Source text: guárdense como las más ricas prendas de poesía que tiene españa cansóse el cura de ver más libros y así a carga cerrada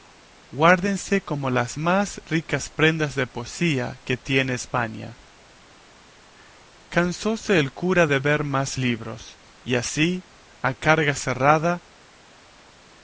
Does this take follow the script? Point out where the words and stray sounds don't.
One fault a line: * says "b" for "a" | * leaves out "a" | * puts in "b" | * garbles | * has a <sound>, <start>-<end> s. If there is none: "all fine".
all fine